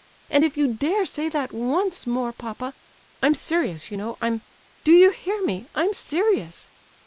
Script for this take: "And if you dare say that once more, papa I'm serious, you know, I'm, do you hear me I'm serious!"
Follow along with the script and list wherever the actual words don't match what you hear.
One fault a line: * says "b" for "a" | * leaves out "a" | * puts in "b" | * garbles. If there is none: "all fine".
all fine